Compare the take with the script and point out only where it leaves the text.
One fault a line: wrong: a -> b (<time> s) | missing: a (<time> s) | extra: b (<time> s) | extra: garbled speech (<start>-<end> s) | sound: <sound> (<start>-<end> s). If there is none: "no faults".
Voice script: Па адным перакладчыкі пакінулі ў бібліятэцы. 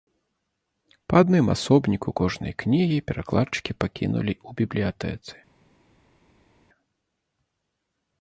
extra: асобніку кожнай кнігі (1.5 s)